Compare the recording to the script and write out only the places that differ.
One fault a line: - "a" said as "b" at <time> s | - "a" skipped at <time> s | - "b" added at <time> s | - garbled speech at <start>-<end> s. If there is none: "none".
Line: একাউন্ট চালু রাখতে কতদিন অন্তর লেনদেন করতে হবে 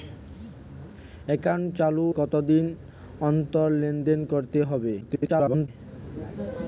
- "রাখতে" skipped at 2.0 s
- garbled speech at 5.0-5.7 s